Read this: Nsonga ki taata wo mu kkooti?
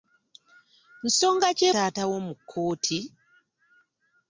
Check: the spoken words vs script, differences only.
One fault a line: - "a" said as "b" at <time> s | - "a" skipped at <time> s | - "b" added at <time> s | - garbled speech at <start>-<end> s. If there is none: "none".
none